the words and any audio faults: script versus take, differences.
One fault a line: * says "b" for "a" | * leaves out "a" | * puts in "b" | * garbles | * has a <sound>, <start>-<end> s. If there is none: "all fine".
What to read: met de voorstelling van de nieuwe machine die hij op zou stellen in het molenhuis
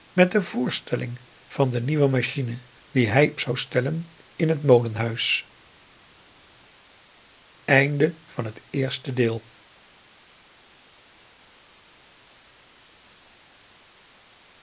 * leaves out "op"